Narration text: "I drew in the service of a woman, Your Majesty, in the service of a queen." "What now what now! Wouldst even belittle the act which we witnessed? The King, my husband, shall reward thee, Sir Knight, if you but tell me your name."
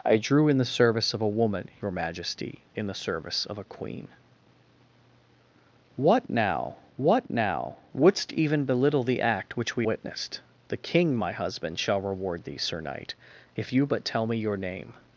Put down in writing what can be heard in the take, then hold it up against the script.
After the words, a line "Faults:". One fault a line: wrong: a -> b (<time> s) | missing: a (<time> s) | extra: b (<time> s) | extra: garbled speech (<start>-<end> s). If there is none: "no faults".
"I drew in the service of a woman, Your Majesty, in the service of a queen." "What now what now! Wouldst even belittle the act which we witnessed? The King, my husband, shall reward thee, Sir Knight, if you but tell me your name."
Faults:
no faults